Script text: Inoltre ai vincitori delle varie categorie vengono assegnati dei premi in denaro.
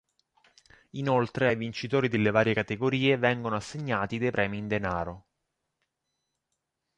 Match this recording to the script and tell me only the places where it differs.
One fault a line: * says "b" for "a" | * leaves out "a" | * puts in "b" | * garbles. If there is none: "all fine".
all fine